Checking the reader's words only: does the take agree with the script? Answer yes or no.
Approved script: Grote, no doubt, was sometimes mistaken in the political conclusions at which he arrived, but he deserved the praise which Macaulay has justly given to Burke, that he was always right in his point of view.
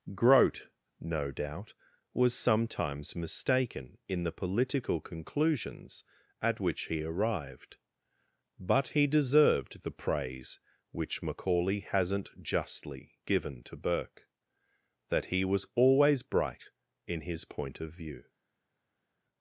no